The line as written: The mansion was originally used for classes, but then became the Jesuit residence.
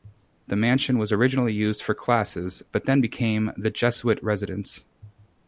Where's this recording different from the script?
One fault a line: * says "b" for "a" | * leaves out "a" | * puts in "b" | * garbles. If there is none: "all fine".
all fine